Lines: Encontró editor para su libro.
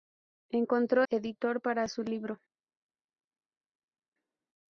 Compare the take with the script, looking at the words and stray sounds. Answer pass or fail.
pass